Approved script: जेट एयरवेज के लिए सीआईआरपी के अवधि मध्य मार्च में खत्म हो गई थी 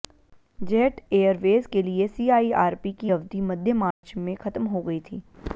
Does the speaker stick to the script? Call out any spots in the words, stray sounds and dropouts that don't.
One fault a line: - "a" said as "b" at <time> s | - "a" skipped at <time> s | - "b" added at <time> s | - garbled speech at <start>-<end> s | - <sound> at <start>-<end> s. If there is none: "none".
- "के" said as "की" at 3.0 s
- dropout at 3.9-4.0 s